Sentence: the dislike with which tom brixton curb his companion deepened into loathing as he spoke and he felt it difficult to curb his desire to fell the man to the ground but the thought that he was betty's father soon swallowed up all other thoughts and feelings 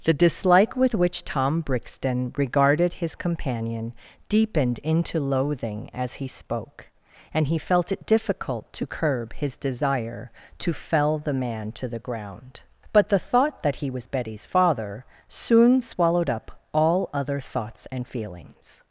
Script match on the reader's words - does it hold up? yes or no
no